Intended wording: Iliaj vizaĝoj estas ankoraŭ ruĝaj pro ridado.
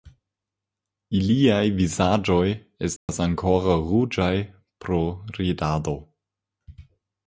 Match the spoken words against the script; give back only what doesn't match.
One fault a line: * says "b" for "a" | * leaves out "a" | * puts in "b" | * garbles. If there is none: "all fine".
all fine